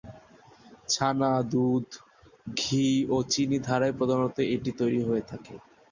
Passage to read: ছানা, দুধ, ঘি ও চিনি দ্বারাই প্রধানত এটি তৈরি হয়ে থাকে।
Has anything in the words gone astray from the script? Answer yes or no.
no